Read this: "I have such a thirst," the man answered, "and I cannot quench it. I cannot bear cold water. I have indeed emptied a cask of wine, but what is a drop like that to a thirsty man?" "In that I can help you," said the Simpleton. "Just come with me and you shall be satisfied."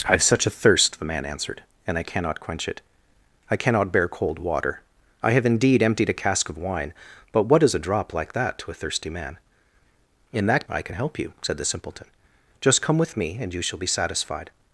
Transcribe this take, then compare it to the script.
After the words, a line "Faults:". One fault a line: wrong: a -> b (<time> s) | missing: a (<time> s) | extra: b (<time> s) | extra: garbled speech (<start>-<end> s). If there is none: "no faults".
"I have such a thirst," the man answered, "and I cannot quench it. I cannot bear cold water. I have indeed emptied a cask of wine, but what is a drop like that to a thirsty man?" "In that I can help you," said the Simpleton. "Just come with me and you shall be satisfied."
Faults:
no faults